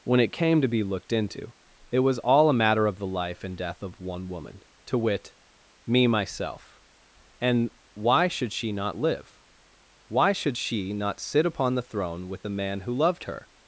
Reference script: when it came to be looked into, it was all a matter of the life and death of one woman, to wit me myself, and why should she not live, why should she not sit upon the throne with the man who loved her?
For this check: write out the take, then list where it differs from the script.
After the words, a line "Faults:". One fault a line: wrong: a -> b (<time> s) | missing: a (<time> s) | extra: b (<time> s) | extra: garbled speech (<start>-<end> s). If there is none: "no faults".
when it came to be looked into, it was all a matter of the life and death of one woman, to wit me myself, and why should she not live, why should she not sit upon the throne with the man who loved her?
Faults:
no faults